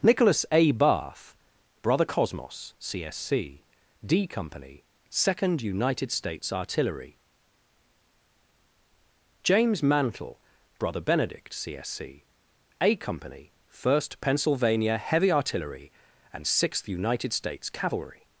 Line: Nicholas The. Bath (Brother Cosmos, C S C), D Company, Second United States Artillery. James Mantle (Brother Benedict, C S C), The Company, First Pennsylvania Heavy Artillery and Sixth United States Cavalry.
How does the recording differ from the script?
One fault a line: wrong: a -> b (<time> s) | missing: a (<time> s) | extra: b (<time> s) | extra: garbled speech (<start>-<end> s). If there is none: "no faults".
wrong: The -> A (0.5 s)
wrong: The -> A (12.8 s)